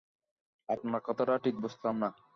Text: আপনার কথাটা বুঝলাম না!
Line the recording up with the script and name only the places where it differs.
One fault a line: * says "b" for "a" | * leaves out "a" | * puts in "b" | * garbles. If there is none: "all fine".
* puts in "ঠিক"